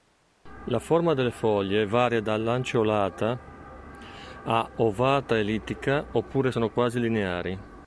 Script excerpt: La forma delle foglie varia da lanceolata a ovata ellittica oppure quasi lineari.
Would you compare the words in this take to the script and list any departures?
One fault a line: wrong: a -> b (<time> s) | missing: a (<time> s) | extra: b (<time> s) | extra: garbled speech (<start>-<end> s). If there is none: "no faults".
extra: sono (6.5 s)